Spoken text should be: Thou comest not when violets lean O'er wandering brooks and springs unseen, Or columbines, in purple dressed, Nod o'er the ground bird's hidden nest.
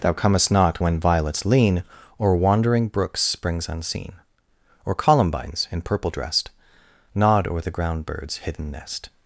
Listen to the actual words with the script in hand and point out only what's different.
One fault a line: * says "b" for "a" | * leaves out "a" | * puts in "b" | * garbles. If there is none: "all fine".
* leaves out "and"